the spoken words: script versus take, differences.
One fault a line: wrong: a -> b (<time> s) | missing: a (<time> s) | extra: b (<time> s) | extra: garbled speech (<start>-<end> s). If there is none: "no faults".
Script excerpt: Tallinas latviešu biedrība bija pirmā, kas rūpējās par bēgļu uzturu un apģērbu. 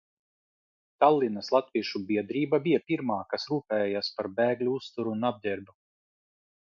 no faults